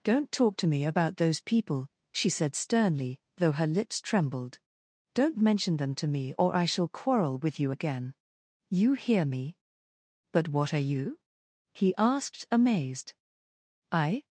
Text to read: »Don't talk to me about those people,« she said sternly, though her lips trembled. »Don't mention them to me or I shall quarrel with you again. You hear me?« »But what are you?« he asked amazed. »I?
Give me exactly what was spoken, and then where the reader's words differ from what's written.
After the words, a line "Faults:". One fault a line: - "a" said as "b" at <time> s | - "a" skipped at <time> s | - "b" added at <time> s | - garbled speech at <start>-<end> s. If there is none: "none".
»Don't talk to me about those people,« she said sternly, though her lips trembled. »Don't mention them to me or I shall quarrel with you again. You hear me?« »But what are you?« he asked amazed. »I?
Faults:
none